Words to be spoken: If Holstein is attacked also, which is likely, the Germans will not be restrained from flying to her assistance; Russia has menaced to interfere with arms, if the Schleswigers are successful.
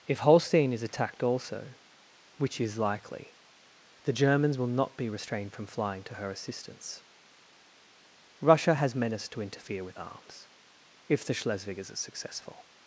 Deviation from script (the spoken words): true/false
false